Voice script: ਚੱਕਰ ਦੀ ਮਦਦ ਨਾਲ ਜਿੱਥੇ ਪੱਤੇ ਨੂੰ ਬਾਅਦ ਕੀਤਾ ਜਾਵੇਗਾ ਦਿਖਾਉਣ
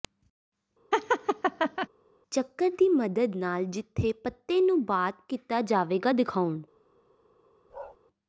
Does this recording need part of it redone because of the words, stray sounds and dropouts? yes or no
yes